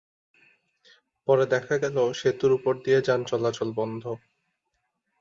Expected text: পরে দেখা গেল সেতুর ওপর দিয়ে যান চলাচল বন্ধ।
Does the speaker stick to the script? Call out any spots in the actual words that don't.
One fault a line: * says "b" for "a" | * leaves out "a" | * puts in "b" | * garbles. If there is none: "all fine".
all fine